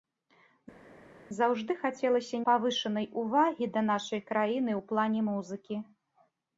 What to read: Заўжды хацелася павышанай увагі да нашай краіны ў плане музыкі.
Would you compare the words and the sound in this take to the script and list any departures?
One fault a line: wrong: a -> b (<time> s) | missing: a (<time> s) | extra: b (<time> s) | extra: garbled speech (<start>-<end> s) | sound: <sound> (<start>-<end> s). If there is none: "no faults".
no faults